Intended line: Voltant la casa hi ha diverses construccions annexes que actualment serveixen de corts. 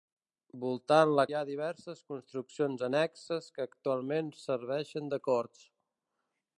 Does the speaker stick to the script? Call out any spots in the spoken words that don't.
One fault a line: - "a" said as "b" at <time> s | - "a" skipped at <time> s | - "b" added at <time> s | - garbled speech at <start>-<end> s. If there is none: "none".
- "casa" skipped at 1.2 s